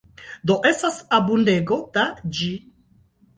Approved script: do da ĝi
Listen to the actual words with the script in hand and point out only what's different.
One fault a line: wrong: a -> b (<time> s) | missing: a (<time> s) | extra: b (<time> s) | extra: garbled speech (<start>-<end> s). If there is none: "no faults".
extra: estas abundego (0.7 s)